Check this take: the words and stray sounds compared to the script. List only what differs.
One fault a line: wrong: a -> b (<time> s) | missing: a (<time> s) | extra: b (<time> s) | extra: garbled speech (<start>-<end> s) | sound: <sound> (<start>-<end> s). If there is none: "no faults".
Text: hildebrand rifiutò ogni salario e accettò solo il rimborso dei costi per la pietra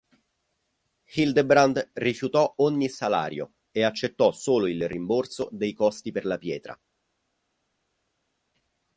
no faults